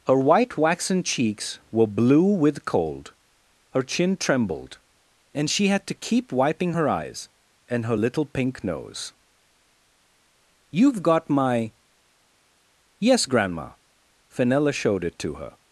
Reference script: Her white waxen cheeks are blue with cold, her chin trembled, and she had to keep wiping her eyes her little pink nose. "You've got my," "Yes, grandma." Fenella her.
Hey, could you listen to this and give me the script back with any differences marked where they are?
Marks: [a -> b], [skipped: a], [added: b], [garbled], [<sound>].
Her white waxen cheeks [are -> were] blue with cold, her chin trembled, and she had to keep wiping her eyes [added: and] her little pink nose. "You've got my," "Yes, grandma." Fenella [added: showed it to] her.